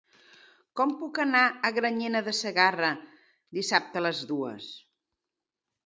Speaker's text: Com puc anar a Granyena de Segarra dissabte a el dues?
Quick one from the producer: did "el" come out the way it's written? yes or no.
no